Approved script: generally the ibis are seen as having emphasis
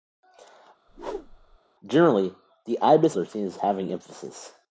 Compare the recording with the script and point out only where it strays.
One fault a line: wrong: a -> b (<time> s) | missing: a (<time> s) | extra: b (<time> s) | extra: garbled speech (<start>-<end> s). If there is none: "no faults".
no faults